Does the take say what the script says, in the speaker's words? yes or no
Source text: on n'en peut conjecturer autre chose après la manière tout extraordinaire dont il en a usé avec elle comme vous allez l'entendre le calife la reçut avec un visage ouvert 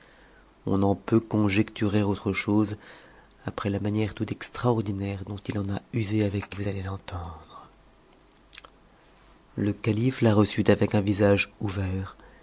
no